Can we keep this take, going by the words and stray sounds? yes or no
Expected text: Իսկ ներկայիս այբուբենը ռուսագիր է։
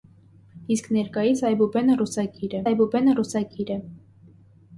no